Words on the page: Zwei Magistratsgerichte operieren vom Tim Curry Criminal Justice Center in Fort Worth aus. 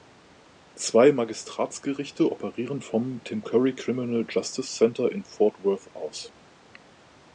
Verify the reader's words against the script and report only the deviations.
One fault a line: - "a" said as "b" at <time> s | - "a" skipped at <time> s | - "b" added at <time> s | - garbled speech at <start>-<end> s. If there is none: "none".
none